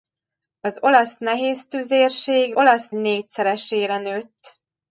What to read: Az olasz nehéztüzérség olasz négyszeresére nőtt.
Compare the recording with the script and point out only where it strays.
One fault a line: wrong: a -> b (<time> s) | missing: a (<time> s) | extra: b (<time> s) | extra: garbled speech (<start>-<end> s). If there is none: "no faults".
no faults